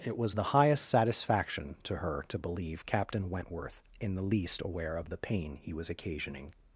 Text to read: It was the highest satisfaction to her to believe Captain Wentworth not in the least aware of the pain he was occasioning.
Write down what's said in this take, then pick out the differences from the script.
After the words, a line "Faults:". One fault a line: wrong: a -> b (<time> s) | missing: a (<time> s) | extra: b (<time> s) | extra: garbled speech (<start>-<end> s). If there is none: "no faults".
It was the highest satisfaction to her to believe Captain Wentworth in the least aware of the pain he was occasioning.
Faults:
missing: not (3.8 s)